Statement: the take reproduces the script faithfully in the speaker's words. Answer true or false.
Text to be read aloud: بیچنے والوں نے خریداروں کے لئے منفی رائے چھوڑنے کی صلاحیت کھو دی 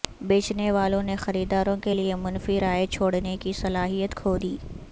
true